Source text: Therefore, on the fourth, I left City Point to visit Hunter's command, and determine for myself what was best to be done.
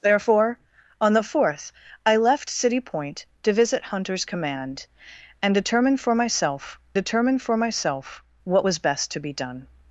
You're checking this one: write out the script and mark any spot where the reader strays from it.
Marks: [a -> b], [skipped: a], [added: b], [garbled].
Therefore, on the fourth, I left City Point to visit Hunter's command, and determine for myself [added: determine for myself] what was best to be done.